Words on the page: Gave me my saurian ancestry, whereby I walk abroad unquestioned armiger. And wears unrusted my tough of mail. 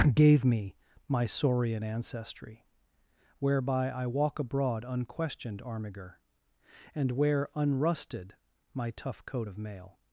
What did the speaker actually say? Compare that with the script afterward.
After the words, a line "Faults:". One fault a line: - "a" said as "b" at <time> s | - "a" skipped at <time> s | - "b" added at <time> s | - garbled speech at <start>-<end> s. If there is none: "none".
Gave me my saurian ancestry, whereby I walk abroad unquestioned armiger. And wear unrusted my tough coat of mail.
Faults:
- "wears" said as "wear" at 7.1 s
- "coat" added at 9.3 s